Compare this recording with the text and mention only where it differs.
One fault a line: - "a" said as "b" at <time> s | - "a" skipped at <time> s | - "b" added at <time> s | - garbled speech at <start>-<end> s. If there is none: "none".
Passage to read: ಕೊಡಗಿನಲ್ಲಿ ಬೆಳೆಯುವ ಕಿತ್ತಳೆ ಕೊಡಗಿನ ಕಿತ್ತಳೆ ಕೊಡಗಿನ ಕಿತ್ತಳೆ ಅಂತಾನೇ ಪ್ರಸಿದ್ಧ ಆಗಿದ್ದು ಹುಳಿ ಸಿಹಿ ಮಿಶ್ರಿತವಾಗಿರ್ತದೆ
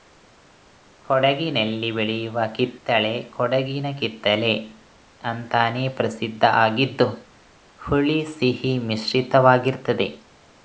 - "ಕೊಡಗಿನ ಕಿತ್ತಳೆ" skipped at 4.5 s